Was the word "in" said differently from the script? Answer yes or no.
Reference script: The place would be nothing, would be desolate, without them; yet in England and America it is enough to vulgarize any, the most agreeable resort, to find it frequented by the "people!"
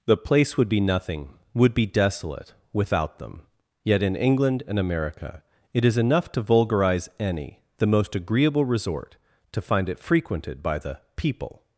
no